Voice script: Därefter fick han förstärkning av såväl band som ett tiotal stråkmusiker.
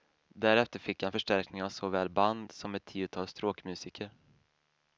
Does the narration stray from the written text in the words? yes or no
no